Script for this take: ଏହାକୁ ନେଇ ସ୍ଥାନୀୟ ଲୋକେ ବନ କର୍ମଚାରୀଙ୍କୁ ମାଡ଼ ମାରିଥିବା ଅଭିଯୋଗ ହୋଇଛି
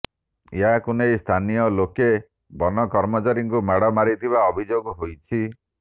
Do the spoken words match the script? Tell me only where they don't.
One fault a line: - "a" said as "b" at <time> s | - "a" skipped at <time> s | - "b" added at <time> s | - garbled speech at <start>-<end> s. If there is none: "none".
none